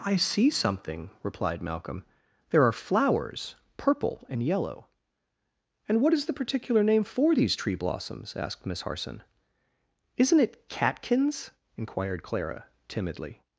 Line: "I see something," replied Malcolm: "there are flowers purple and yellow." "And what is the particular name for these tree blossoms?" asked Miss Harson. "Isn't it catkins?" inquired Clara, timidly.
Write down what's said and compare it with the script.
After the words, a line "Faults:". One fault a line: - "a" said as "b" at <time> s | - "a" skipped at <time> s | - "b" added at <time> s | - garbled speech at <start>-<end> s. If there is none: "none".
"I see something," replied Malcolm: "there are flowers purple and yellow." "And what is the particular name for these tree blossoms?" asked Miss Harson. "Isn't it catkins?" inquired Clara, timidly.
Faults:
none